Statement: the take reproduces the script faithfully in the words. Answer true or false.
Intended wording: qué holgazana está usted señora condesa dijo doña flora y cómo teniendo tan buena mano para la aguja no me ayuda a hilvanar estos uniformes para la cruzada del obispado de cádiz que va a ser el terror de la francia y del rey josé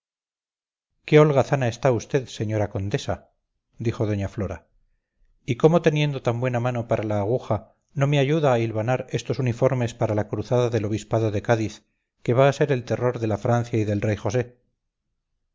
true